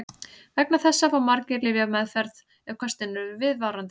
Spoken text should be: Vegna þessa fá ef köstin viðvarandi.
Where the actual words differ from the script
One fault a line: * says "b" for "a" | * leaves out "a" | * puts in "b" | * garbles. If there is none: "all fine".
* puts in "margir lyfjameðferð"
* puts in "eru"